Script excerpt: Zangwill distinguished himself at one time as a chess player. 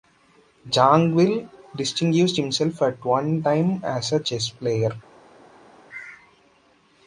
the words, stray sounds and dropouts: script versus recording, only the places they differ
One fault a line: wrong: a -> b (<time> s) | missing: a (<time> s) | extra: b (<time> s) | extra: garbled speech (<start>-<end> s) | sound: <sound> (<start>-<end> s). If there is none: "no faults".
no faults